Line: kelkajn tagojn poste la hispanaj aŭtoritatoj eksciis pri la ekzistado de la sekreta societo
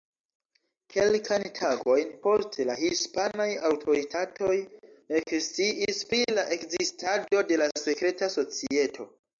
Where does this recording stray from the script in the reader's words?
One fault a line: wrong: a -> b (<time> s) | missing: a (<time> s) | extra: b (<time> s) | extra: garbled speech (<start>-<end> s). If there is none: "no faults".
no faults